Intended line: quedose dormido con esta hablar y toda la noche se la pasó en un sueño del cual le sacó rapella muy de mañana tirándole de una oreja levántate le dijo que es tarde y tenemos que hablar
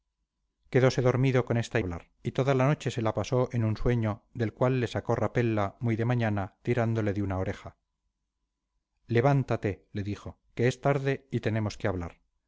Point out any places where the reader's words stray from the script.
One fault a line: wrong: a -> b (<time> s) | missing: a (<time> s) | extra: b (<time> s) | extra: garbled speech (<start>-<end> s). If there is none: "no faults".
no faults